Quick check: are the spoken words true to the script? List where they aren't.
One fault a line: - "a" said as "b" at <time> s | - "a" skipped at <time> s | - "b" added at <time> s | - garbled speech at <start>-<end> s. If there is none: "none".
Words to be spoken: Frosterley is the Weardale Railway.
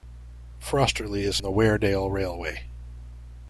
none